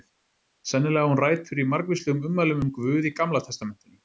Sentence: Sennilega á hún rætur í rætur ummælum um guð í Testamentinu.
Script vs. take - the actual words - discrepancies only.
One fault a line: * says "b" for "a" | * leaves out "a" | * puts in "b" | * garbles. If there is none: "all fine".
* says "margvíslegum" for "rætur"
* puts in "Gamla"